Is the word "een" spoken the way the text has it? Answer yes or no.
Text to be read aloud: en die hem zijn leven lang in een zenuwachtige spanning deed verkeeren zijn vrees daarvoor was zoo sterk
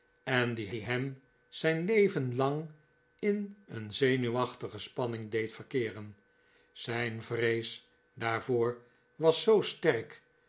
yes